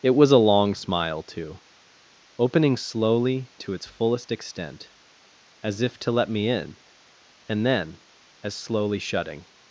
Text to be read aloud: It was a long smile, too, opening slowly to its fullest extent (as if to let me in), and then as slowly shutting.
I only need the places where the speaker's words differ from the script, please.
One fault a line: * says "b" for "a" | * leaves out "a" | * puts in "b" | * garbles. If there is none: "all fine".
all fine